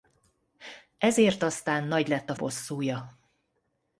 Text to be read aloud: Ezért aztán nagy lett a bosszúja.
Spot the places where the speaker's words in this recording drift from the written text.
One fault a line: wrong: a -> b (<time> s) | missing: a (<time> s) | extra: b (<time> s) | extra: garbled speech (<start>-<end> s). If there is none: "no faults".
no faults